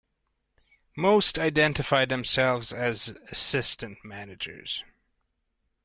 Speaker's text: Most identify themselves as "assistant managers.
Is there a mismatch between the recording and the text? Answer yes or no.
no